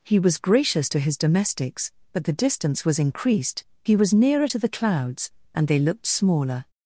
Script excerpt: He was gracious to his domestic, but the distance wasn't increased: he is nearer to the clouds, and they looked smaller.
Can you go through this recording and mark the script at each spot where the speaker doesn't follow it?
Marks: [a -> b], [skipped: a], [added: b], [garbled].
He was gracious to his [domestic, -> domestics] but the distance [wasn't -> was] increased: he [is -> was] nearer to the clouds, and they looked smaller.